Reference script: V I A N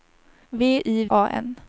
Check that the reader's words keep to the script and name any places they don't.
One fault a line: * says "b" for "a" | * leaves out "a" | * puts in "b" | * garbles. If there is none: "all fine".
all fine